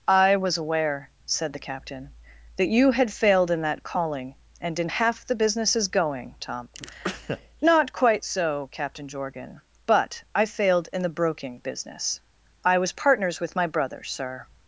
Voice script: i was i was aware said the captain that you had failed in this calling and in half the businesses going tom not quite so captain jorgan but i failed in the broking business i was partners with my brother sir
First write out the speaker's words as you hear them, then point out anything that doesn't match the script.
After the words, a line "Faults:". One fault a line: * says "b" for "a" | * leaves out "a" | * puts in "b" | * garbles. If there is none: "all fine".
i was aware said the captain that you had failed in that calling and in half the businesses going tom not quite so captain jorgan but i failed in the broking business i was partners with my brother sir
Faults:
* leaves out "i was"
* says "that" for "this"